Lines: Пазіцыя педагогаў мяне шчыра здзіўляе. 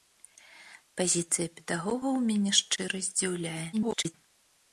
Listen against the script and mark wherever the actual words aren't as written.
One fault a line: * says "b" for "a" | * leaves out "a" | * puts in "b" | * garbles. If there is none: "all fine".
* garbles